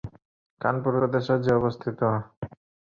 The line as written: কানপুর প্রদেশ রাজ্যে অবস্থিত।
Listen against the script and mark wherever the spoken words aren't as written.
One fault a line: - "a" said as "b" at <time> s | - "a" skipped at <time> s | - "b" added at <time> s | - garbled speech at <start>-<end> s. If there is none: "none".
none